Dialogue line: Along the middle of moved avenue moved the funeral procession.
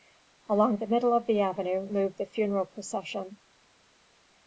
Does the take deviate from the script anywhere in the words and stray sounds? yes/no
yes